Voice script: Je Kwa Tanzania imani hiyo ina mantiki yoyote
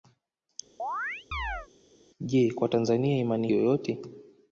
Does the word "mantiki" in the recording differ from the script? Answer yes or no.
yes